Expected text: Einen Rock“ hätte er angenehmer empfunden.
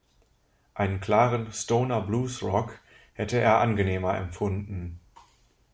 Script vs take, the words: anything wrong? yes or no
yes